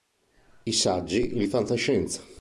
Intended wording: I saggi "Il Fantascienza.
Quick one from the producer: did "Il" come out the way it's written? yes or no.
yes